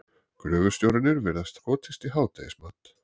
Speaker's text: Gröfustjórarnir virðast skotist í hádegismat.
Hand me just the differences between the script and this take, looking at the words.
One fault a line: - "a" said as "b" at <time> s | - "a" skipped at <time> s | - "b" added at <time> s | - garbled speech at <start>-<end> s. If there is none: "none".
none